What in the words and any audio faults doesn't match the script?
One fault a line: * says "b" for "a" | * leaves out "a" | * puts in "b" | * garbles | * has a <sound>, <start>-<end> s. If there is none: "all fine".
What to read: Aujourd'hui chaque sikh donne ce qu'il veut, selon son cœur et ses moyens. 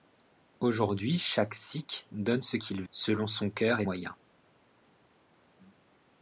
* leaves out "veut"
* leaves out "ses"